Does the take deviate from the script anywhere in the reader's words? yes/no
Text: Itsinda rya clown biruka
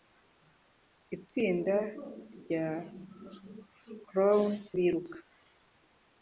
no